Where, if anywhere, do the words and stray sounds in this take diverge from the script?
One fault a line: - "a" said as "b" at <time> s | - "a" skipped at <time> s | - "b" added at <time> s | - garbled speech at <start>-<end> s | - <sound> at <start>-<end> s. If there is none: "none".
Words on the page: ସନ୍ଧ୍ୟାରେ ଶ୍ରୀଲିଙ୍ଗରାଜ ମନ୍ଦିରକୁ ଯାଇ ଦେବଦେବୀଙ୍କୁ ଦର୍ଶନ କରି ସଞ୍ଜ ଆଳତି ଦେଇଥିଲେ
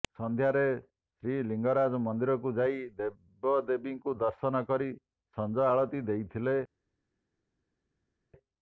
none